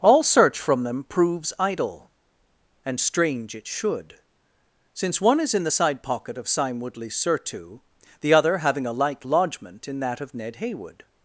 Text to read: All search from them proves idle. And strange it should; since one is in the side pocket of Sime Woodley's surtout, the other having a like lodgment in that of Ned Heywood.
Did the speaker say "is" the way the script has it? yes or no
yes